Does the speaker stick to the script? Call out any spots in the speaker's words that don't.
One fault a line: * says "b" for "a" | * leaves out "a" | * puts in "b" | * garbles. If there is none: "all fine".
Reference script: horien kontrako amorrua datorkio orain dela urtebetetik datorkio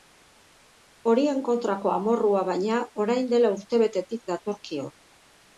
* says "baina" for "datorkio"